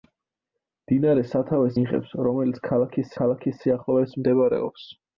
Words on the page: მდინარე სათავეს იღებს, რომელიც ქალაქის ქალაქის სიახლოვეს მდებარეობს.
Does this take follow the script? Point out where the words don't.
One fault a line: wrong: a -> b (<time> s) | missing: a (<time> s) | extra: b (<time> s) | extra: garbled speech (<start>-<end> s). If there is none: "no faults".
no faults